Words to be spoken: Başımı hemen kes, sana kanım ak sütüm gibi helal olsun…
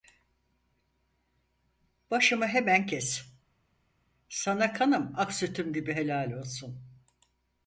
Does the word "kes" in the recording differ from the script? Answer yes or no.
no